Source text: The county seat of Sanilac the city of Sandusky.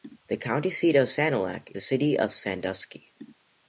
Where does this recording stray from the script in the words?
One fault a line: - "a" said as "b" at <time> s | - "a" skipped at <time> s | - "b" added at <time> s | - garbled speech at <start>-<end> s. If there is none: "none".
none